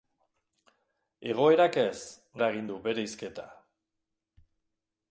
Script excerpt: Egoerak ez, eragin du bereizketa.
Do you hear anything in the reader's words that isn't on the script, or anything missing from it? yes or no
no